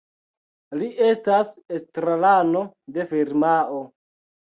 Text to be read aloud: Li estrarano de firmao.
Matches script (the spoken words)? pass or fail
fail